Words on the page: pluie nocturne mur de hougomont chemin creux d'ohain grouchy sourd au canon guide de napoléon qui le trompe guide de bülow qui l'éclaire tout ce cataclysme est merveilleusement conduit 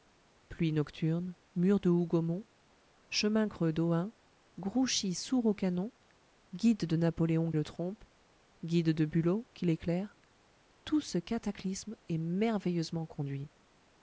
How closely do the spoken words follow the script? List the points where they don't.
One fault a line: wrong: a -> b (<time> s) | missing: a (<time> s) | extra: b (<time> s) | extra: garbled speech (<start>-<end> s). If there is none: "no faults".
missing: qui (7.5 s)